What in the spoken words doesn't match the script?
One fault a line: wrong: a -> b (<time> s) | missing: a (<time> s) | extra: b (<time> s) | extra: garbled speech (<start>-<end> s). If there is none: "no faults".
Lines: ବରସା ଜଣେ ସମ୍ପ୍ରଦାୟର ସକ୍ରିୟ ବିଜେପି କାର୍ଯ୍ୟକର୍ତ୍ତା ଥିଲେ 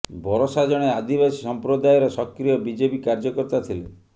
extra: ଆଦିବାସୀ (0.9 s)